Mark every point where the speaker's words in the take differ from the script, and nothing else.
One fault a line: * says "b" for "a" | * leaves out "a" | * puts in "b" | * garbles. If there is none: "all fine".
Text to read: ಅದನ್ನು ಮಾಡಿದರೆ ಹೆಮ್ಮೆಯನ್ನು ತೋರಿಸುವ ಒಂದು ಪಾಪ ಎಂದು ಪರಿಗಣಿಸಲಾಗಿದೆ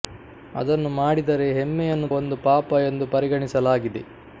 * leaves out "ತೋರಿಸುವ"